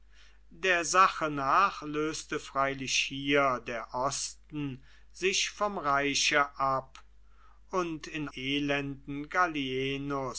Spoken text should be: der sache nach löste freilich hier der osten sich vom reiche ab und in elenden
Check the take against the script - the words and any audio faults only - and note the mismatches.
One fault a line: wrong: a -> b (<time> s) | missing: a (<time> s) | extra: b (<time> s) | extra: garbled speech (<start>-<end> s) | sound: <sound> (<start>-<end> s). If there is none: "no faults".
no faults